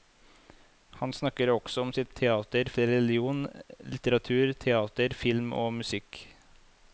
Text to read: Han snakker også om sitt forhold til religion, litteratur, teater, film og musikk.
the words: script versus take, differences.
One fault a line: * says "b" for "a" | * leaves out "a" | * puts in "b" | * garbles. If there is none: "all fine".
* says "teater" for "forhold"